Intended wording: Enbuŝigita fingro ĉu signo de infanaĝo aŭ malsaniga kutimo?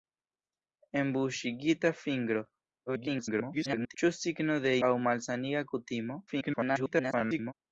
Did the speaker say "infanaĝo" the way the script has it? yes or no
no